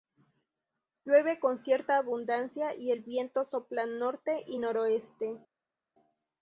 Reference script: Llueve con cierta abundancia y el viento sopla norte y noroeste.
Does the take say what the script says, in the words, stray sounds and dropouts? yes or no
yes